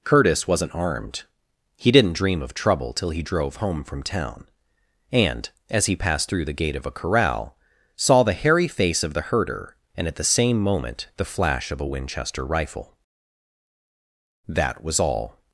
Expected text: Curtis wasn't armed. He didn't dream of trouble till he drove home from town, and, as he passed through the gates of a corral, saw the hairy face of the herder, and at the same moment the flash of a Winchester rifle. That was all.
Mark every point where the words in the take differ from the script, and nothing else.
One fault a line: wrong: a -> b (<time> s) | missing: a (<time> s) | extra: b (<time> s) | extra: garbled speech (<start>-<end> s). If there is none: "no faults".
wrong: gates -> gate (6.5 s)